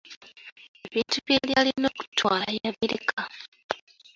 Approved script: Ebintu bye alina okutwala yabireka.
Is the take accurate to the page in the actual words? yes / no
no